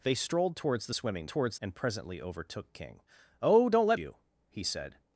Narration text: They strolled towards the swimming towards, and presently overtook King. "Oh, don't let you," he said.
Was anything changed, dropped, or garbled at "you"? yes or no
no